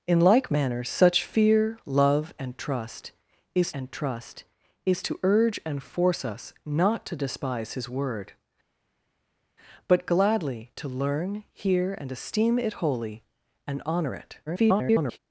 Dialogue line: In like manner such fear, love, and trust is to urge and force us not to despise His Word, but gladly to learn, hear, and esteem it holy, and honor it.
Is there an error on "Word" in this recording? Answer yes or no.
no